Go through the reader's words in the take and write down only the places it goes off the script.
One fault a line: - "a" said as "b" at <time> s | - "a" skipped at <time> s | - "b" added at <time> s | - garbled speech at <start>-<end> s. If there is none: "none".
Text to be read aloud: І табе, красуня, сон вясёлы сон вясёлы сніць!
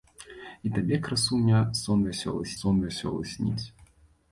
none